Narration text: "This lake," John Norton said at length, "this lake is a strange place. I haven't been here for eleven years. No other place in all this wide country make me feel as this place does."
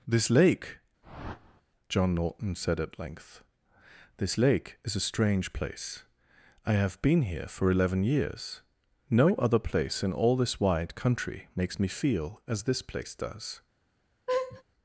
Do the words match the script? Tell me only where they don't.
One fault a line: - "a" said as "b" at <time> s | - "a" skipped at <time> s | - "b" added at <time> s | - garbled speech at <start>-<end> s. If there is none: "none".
- "haven't" said as "have" at 6.7 s
- "make" said as "makes" at 11.5 s